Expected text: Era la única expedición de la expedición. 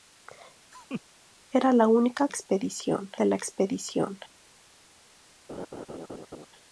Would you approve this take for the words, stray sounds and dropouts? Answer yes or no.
no